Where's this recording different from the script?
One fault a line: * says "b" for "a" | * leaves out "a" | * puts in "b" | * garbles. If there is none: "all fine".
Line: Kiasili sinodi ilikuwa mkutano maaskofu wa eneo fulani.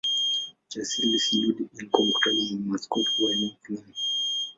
* puts in "wa"